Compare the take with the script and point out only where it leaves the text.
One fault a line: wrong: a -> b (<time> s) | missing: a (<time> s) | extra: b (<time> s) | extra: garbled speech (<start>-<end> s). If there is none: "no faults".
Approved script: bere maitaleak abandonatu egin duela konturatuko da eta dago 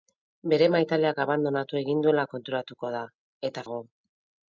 no faults